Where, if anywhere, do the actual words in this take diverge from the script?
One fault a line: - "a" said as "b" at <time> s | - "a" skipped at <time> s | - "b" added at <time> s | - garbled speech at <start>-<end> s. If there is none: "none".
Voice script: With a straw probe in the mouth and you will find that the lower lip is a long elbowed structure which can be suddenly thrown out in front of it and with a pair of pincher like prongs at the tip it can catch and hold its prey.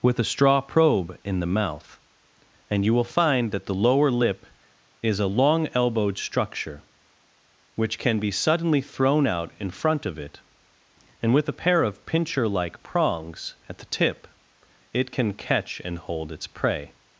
none